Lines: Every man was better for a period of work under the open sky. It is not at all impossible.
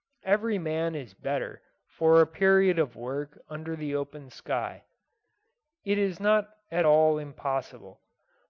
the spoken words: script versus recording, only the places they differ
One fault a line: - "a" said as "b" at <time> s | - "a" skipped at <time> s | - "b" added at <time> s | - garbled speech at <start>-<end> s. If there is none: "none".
- "was" said as "is" at 0.9 s